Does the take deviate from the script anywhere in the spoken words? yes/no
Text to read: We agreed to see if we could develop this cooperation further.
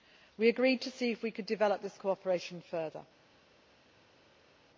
no